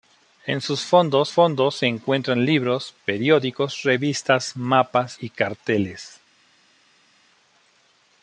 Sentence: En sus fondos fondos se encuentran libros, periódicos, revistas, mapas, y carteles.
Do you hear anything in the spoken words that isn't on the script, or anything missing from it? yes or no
no